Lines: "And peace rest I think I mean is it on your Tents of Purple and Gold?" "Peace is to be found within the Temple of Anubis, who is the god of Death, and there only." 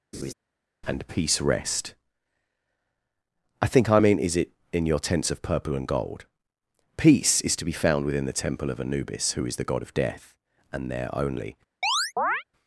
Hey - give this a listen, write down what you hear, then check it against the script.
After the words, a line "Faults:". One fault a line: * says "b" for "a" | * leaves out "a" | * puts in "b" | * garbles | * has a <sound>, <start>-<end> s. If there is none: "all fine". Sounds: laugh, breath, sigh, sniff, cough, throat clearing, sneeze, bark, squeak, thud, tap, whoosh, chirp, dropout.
"And peace rest I think I mean is it in your Tents of Purple and Gold?" "Peace is to be found within the Temple of Anubis, who is the god of Death, and there only."
Faults:
* has a laugh, 0.1-0.3 s
* says "in" for "on"
* has a chirp, 11.8-12.4 s